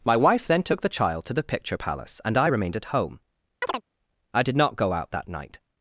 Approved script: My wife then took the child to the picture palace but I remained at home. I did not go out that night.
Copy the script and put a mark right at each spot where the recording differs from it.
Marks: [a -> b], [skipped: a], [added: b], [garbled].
My wife then took the child to the picture palace [but -> and] I remained at home. I did not go out that night.